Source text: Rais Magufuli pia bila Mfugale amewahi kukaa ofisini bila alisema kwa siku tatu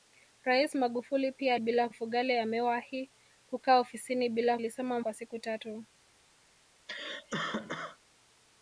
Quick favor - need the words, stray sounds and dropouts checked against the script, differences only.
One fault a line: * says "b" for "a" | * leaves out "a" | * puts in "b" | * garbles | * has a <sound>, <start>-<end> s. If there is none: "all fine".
* has a cough, 6.9-8.0 s